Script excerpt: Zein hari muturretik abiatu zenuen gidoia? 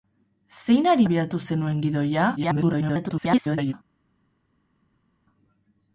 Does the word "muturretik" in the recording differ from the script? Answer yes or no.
yes